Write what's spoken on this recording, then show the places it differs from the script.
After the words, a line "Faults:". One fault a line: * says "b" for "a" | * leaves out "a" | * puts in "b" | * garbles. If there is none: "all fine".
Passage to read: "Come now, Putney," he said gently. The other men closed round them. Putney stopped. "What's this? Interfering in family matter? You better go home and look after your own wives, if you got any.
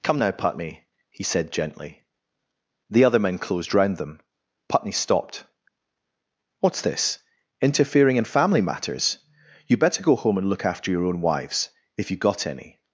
"Come now, Putney," he said gently. The other men closed round them. Putney stopped. "What's this? Interfering in family matters? You better go home and look after your own wives, if you got any.
Faults:
* says "matters" for "matter"